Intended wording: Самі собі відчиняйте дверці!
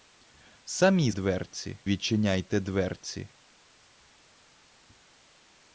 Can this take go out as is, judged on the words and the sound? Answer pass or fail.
fail